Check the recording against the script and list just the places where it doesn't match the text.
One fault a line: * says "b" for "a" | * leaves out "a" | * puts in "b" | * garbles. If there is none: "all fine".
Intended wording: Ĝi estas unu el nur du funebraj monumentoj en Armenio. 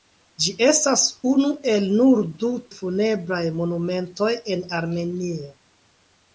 all fine